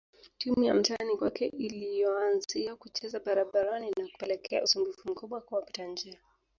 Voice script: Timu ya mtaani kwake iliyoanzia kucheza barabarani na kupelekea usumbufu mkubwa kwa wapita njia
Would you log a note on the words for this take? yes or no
no